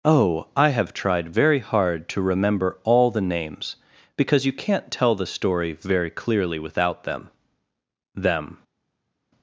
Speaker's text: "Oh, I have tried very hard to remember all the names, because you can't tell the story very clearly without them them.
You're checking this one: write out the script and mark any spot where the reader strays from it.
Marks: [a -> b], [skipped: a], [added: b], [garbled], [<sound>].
"Oh, I have tried very hard to remember all the names, because you can't tell the story very clearly without them them.